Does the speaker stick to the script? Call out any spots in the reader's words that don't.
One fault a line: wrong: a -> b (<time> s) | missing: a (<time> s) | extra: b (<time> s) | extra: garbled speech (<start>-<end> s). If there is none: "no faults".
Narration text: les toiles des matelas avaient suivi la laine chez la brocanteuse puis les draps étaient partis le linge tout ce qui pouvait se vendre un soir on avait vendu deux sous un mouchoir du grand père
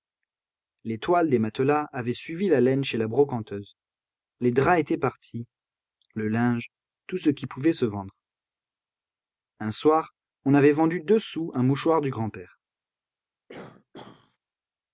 missing: puis (3.8 s)